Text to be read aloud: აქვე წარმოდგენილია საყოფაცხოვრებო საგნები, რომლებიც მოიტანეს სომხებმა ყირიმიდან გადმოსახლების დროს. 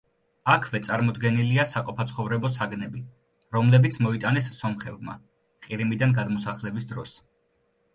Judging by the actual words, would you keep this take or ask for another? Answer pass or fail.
pass